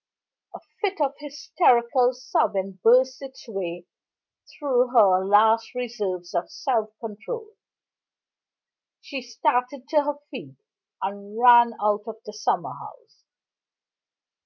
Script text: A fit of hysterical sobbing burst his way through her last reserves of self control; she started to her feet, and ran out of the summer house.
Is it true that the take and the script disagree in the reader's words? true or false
true